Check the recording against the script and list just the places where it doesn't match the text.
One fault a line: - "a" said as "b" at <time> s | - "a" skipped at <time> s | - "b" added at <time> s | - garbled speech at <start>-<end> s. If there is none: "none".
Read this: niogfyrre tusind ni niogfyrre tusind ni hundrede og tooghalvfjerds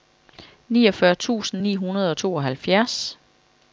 - "niogfyrre tusind ni" skipped at 1.7 s